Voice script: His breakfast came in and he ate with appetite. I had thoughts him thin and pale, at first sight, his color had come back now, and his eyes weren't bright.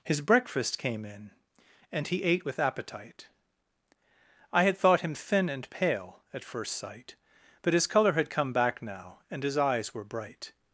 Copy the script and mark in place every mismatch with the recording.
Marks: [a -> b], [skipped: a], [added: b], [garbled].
His breakfast came in and he ate with appetite. I had [thoughts -> thought] him thin and pale, at first sight, [added: but] his color had come back now, and his eyes [weren't -> were] bright.